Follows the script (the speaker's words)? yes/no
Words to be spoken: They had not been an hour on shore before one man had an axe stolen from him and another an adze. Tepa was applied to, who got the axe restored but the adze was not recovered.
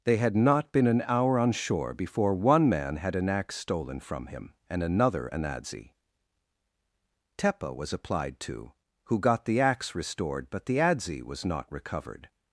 yes